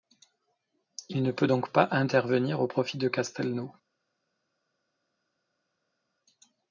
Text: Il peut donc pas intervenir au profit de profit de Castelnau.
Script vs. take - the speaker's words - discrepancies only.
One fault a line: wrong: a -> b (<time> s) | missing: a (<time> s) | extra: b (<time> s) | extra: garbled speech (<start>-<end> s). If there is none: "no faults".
extra: ne (1.2 s)
missing: profit de (3.1 s)